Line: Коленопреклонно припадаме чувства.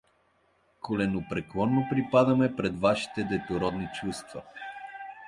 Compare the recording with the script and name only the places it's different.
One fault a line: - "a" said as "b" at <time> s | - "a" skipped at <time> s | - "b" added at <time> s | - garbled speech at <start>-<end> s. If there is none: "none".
- "пред вашите детородни" added at 2.5 s